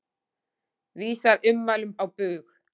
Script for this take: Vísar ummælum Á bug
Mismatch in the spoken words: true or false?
false